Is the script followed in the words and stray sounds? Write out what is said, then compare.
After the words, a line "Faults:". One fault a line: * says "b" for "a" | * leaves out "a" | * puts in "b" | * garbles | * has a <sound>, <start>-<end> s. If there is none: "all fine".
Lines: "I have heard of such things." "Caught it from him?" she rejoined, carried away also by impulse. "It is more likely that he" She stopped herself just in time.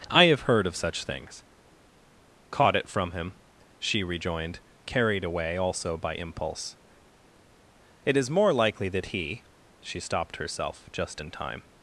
"I have heard of such things." "Caught it from him?" she rejoined, carried away also by impulse. "It is more likely that he" She stopped herself just in time.
Faults:
all fine